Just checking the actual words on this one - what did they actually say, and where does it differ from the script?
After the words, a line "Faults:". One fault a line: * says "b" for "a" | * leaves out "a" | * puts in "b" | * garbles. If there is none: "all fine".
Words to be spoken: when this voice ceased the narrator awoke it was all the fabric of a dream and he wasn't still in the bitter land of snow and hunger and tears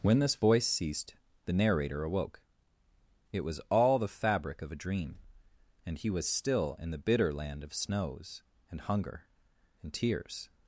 when this voice ceased the narrator awoke it was all the fabric of a dream and he was still in the bitter land of snows and hunger and tears
Faults:
* says "was" for "wasn't"
* says "snows" for "snow"